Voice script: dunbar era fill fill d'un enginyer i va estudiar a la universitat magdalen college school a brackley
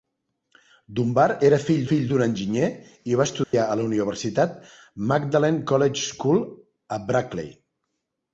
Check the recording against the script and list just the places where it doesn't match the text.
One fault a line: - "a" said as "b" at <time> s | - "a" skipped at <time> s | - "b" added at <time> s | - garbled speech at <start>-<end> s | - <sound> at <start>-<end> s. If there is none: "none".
- dropout at 3.4-3.5 s